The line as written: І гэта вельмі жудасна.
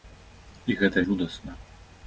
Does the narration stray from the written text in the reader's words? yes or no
yes